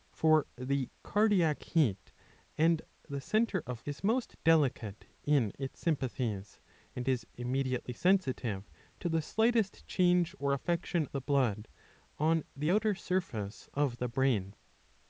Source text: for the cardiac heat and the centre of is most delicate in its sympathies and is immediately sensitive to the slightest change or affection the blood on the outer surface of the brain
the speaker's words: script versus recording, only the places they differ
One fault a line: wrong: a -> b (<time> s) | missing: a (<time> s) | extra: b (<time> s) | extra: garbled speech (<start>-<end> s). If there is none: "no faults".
no faults